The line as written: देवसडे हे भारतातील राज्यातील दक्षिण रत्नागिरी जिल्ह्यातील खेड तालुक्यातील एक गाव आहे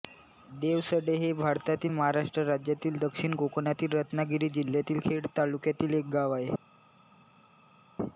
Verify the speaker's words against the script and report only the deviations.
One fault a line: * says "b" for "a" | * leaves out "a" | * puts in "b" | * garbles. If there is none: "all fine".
* puts in "महाराष्ट्र"
* puts in "कोकणातील"